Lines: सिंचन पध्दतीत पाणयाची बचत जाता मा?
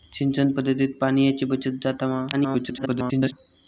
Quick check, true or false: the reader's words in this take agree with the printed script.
false